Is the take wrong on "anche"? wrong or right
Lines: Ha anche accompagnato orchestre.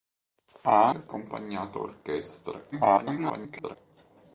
wrong